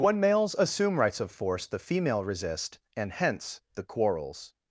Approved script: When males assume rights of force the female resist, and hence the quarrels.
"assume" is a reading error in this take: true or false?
false